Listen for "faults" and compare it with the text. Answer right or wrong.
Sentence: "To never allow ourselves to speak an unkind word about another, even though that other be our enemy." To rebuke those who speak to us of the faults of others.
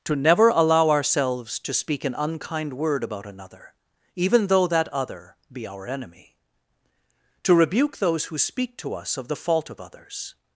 wrong